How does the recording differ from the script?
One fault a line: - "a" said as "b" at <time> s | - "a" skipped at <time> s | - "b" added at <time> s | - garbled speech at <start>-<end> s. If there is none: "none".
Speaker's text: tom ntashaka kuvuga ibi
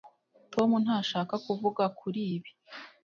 - "kuri" added at 2.0 s